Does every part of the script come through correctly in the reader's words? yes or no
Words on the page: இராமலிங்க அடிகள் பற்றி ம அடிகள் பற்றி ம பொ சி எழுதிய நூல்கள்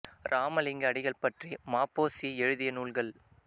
no